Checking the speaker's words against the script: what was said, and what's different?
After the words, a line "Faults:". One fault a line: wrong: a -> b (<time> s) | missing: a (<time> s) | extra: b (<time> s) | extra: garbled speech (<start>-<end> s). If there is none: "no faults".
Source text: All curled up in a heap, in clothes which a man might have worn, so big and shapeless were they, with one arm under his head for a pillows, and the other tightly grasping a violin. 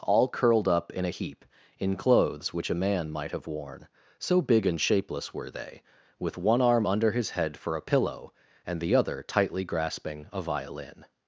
All curled up in a heap, in clothes which a man might have worn, so big and shapeless were they, with one arm under his head for a pillow, and the other tightly grasping a violin.
Faults:
wrong: pillows -> pillow (7.8 s)